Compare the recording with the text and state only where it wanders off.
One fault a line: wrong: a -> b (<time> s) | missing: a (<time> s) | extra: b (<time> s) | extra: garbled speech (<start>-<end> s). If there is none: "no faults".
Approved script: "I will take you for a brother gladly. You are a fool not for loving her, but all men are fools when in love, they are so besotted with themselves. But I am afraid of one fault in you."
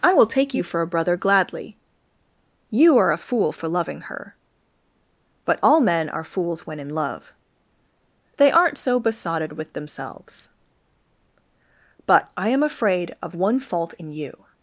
missing: not (3.5 s)
wrong: are -> aren't (8.5 s)